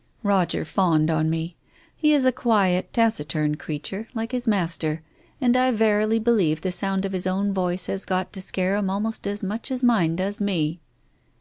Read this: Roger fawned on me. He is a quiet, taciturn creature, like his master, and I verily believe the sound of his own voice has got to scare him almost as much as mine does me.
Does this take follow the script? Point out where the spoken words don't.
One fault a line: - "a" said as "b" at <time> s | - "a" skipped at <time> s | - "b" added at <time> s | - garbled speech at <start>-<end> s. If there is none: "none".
none